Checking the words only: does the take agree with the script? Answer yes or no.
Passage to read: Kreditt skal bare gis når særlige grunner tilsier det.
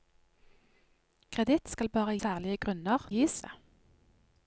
no